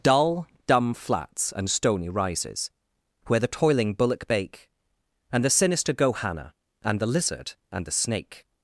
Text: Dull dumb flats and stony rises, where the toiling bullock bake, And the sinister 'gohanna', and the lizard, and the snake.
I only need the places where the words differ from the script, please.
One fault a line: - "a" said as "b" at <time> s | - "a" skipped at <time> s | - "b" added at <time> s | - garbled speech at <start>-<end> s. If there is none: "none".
none